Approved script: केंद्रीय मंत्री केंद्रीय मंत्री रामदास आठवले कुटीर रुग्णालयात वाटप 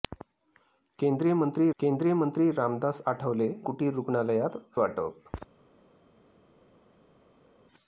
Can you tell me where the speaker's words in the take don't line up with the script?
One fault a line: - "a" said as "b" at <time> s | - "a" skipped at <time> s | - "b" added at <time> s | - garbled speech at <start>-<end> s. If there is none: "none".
none